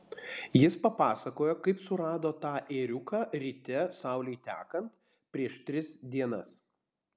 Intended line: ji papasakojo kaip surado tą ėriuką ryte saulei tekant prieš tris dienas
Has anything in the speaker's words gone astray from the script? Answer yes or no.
yes